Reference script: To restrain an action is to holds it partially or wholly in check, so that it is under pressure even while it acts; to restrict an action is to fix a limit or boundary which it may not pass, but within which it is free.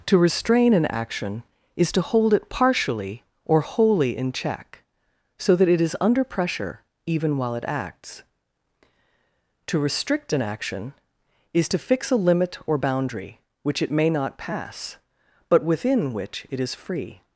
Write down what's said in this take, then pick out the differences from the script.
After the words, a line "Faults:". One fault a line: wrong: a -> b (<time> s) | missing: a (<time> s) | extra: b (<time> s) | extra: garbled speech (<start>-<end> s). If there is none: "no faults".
To restrain an action is to hold it partially or wholly in check, so that it is under pressure even while it acts; to restrict an action is to fix a limit or boundary which it may not pass, but within which it is free.
Faults:
wrong: holds -> hold (2.0 s)